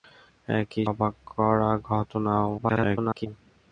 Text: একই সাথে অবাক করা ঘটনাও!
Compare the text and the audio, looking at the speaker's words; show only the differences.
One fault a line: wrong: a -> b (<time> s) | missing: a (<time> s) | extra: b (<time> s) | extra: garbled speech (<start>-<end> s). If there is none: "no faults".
missing: সাথে (0.9 s)
extra: garbled speech (2.6-3.3 s)